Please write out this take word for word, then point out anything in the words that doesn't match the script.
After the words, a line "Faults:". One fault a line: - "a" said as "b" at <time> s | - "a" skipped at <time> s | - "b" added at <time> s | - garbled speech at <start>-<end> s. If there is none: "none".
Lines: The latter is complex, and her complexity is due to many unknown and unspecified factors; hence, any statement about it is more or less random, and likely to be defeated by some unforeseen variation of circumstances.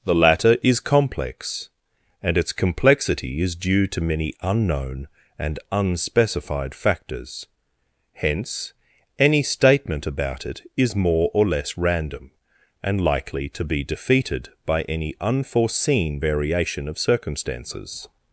The latter is complex, and its complexity is due to many unknown and unspecified factors; hence, any statement about it is more or less random, and likely to be defeated by any unforeseen variation of circumstances.
Faults:
- "her" said as "its" at 2.4 s
- "some" said as "any" at 14.8 s